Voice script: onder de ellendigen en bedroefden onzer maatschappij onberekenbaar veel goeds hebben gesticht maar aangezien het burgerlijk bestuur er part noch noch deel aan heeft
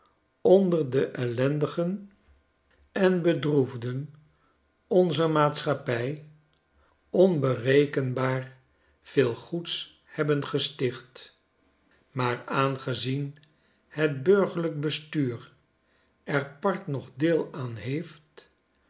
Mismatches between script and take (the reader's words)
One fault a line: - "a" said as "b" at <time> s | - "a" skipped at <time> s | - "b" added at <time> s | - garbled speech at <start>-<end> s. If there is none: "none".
- "noch" skipped at 17.1 s